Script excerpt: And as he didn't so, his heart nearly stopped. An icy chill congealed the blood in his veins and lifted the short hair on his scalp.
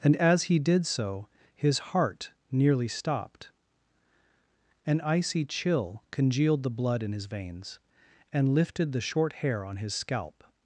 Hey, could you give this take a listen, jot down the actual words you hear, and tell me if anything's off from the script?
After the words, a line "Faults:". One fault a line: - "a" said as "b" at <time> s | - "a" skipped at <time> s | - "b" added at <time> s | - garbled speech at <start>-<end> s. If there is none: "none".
And as he did so, his heart nearly stopped. An icy chill congealed the blood in his veins and lifted the short hair on his scalp.
Faults:
- "didn't" said as "did" at 0.6 s